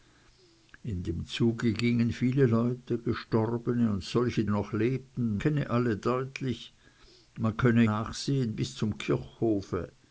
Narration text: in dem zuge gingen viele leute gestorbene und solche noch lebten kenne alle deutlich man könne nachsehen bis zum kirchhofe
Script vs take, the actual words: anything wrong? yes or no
no